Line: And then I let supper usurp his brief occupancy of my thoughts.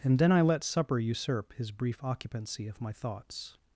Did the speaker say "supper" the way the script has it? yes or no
yes